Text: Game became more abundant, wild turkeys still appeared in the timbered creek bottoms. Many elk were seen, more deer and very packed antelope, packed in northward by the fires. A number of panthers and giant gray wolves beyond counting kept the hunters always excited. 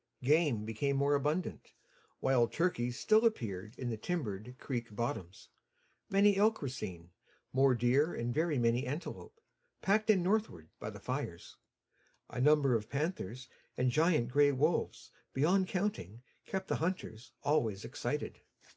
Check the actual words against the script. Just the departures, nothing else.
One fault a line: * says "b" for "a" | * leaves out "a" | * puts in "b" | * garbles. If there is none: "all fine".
* says "many" for "packed"